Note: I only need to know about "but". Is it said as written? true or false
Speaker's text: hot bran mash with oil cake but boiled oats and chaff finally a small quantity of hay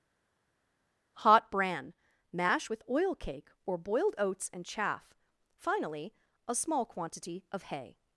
false